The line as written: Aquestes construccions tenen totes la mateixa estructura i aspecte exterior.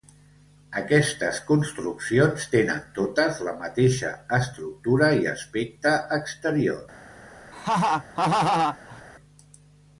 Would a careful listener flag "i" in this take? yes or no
no